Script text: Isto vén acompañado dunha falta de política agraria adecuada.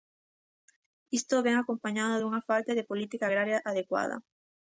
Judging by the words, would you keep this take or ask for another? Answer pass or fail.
pass